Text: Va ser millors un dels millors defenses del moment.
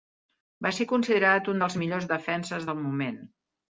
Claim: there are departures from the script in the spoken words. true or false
true